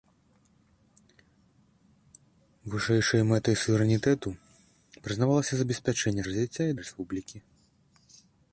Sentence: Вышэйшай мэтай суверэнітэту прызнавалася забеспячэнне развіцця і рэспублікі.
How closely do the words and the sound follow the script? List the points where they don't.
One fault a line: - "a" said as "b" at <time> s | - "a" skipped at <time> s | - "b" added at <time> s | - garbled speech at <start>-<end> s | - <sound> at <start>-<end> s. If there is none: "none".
none